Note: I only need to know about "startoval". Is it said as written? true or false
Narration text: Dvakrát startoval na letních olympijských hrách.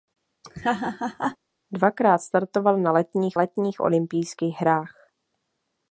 true